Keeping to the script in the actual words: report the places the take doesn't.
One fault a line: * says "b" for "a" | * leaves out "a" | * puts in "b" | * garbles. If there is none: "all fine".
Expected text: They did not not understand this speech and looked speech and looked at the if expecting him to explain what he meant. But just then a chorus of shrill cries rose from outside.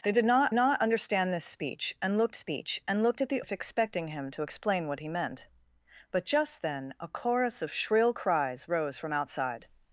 all fine